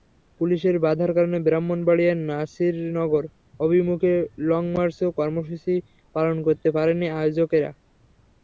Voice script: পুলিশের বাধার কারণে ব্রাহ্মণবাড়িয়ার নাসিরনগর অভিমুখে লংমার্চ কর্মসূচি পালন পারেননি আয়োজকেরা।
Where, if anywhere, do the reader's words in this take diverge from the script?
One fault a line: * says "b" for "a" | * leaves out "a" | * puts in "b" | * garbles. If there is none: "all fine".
* puts in "করতে"